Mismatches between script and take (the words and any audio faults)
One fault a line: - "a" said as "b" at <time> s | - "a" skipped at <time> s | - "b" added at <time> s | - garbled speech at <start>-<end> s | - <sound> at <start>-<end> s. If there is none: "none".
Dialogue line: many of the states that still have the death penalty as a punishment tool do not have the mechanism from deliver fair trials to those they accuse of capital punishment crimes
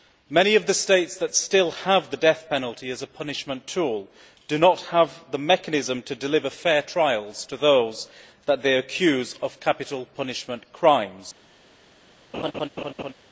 - "from" said as "to" at 6.0 s
- "that" added at 8.5 s
- laugh at 12.3-13.1 s